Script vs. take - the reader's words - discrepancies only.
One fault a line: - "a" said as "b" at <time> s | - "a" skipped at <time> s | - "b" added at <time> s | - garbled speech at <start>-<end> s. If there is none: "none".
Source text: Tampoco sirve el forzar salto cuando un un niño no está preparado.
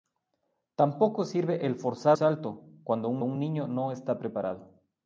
none